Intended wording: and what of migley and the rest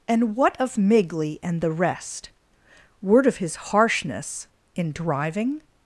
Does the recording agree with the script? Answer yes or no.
no